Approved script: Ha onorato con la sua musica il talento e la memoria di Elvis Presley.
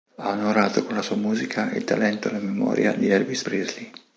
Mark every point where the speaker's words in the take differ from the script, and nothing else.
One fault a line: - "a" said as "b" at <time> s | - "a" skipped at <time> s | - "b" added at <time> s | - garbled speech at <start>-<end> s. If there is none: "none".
none